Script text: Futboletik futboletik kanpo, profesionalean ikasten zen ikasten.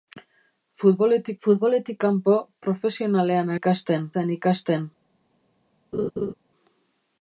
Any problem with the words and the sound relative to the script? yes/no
yes